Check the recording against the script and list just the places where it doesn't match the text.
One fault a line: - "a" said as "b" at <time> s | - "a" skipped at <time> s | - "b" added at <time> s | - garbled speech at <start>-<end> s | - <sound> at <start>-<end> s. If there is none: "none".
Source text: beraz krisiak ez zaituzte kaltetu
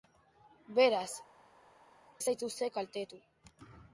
- "krisiak" skipped at 1.1 s